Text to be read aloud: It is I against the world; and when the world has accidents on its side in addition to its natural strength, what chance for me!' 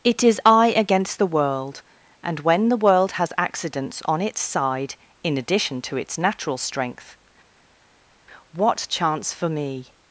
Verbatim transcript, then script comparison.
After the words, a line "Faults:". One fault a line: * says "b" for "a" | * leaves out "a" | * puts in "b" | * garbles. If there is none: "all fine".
It is I against the world; and when the world has accidents on its side in addition to its natural strength, what chance for me!'
Faults:
all fine